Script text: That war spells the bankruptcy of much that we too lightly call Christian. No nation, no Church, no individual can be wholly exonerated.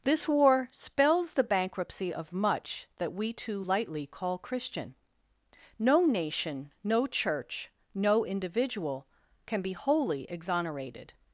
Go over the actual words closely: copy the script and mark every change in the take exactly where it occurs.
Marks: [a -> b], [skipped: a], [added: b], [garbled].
[That -> This] war spells the bankruptcy of much that we too lightly call Christian. No nation, no Church, no individual can be wholly exonerated.